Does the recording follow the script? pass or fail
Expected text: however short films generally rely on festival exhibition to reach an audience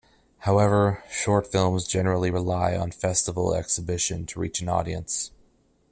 pass